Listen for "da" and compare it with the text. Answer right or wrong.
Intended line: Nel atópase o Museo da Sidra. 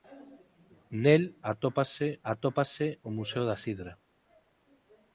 right